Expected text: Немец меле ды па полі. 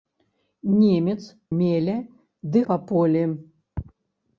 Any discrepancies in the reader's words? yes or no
no